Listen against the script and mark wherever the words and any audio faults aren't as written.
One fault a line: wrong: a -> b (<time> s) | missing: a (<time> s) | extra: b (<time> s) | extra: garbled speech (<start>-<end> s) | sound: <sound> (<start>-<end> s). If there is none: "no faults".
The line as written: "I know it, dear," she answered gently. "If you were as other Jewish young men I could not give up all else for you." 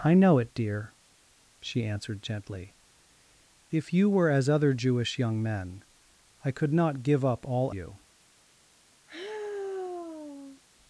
missing: else for (7.7 s)
sound: sigh (9.1-10.6 s)